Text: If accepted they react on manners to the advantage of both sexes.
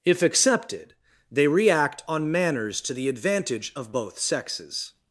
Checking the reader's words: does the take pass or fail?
pass